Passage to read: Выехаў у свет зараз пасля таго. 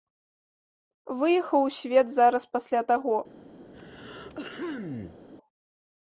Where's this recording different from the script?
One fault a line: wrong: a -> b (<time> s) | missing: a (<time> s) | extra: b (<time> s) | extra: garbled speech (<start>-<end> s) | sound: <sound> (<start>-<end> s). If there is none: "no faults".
sound: throat clearing (3.7-5.2 s)